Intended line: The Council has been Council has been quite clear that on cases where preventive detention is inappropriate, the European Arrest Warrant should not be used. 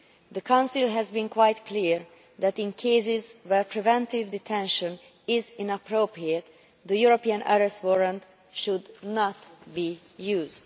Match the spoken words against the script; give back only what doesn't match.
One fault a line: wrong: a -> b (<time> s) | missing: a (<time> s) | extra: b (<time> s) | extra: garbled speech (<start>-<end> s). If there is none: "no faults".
missing: Council has been (1.3 s)
wrong: on -> in (2.6 s)